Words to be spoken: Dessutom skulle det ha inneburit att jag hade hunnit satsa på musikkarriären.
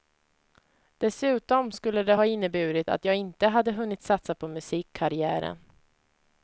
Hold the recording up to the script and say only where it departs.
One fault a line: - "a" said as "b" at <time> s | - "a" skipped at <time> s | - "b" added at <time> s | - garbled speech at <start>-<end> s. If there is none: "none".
- "inte" added at 3.1 s